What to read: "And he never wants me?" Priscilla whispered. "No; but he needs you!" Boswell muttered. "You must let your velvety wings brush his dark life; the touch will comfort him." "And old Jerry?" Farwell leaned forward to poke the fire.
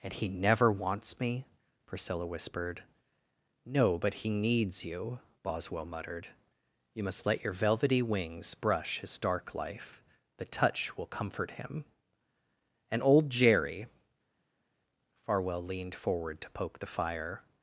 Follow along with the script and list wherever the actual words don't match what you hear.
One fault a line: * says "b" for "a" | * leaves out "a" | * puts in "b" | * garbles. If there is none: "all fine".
all fine